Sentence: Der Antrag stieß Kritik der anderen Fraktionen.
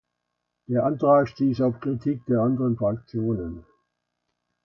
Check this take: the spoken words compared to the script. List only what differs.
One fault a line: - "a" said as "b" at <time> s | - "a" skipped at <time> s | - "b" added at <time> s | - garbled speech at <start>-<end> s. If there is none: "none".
- "auf" added at 1.6 s